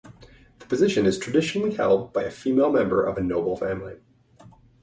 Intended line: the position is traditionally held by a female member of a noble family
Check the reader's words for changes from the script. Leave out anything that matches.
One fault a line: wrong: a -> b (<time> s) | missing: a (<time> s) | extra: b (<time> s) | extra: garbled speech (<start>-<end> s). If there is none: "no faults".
no faults